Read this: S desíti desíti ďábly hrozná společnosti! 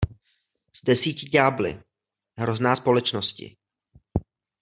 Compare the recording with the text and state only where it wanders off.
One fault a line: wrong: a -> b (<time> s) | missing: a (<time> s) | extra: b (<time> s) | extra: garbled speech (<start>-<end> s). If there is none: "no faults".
missing: desíti (1.3 s)